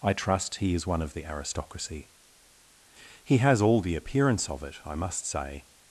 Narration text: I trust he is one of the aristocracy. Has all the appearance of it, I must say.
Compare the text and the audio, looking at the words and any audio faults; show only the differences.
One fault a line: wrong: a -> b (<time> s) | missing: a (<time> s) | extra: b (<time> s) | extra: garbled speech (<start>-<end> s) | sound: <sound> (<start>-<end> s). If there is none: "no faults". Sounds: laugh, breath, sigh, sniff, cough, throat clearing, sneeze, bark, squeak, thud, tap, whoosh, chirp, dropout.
extra: He (3.2 s)